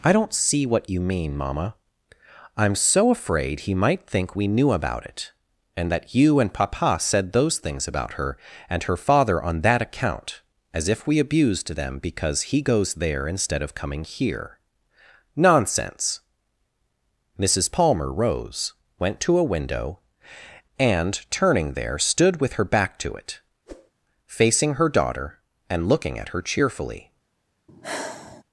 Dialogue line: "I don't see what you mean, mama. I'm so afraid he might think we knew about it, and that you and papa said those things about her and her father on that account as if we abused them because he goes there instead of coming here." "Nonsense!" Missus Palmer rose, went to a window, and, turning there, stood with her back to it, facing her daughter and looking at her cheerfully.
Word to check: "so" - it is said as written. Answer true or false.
true